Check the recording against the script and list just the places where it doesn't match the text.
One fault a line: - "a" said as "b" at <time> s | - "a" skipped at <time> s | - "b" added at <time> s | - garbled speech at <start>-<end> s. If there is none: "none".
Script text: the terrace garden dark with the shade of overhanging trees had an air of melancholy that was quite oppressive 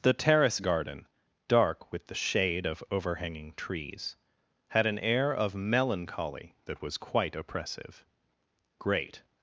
- "great" added at 8.8 s